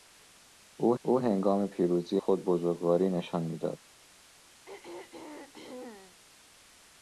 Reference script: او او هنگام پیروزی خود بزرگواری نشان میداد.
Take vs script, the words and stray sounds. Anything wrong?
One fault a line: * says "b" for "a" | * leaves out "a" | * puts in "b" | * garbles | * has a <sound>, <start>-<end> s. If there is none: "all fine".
* has a throat clearing, 4.6-6.2 s